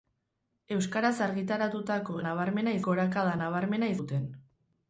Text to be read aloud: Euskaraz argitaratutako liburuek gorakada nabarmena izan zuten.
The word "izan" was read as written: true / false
false